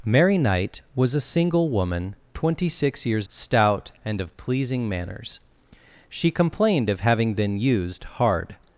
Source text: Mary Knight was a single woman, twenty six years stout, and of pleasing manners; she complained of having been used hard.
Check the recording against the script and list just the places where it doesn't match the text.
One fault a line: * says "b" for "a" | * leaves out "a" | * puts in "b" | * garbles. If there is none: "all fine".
all fine